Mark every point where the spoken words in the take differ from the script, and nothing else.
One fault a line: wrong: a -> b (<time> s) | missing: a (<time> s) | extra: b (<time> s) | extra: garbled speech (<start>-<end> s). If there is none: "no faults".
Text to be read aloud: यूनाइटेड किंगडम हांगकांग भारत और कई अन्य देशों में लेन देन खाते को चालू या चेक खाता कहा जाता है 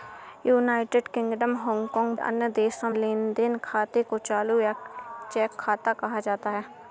missing: भारत और कई (2.1 s)
missing: में (2.9 s)